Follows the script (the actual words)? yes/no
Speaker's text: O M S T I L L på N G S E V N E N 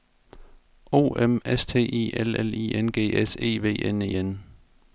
no